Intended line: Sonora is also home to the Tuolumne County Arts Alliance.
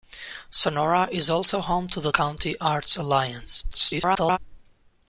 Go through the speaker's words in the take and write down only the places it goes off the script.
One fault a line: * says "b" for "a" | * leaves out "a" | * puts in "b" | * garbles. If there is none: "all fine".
* leaves out "Tuolumne"
* garbles